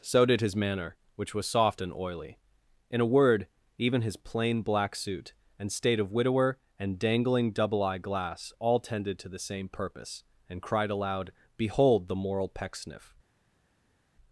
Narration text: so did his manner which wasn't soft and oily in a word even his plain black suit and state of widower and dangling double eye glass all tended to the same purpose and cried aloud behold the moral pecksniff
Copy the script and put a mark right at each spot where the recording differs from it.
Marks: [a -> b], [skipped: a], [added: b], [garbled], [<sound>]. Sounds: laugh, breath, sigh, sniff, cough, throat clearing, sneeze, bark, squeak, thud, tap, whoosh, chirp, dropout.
so did his manner which [wasn't -> was] soft and oily in a word even his plain black suit and state of widower and dangling double eye glass all tended to the same purpose and cried aloud behold the moral pecksniff